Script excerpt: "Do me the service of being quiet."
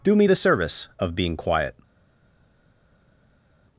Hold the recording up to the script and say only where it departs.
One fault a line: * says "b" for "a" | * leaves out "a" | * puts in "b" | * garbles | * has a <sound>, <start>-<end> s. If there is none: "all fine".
all fine